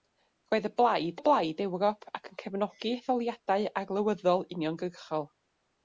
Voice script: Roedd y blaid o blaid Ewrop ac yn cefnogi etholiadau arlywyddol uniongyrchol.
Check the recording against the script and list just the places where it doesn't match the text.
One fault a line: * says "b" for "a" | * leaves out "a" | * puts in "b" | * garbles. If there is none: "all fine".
all fine